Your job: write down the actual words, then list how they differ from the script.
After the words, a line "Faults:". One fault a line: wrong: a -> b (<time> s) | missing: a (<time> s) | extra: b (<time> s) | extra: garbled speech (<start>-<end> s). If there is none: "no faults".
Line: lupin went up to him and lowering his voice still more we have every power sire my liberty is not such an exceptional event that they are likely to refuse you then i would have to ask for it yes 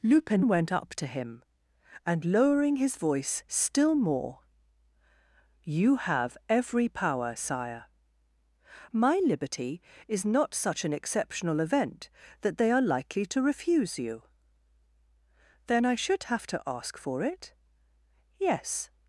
lupin went up to him and lowering his voice still more you have every power sire my liberty is not such an exceptional event that they are likely to refuse you then i should have to ask for it yes
Faults:
wrong: we -> you (5.6 s)
wrong: would -> should (16.0 s)